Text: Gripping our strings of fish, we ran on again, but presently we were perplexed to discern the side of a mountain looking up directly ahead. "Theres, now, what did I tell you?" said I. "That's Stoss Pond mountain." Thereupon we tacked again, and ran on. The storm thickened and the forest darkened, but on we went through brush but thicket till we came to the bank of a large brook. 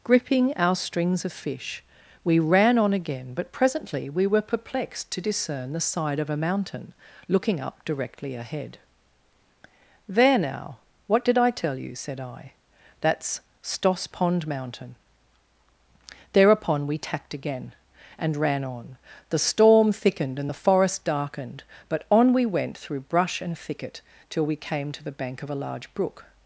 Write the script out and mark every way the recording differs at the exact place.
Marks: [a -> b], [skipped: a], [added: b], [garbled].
Gripping our strings of fish, we ran on again, but presently we were perplexed to discern the side of a mountain looking up directly ahead. ["Theres, -> There] now, what did I tell you?" said I. "That's Stoss Pond mountain." Thereupon we tacked again, and ran on. The storm thickened and the forest darkened, but on we went through brush [but -> and] thicket till we came to the bank of a large brook.